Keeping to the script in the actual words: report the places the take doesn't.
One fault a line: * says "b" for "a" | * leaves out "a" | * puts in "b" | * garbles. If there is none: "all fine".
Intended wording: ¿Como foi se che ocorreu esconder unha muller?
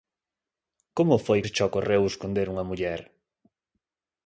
all fine